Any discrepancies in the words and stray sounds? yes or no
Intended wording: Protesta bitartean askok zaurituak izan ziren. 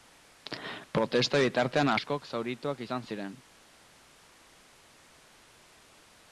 no